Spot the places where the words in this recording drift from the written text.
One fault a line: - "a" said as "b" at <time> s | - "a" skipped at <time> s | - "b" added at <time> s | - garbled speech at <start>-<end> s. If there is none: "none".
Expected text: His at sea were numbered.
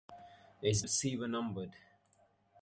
none